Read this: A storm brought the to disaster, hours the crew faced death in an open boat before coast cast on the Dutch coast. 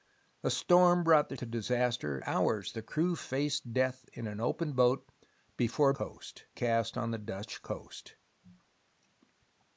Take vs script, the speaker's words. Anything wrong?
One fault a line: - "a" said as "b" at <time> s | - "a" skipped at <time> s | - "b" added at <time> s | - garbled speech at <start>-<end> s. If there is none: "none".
none